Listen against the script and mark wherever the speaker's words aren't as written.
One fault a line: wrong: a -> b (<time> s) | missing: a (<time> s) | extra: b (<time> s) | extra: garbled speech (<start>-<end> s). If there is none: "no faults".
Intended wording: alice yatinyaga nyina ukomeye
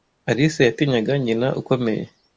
no faults